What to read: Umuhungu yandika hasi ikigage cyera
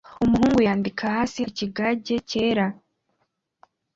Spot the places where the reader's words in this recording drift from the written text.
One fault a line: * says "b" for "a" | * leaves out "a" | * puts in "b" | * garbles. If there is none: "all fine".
all fine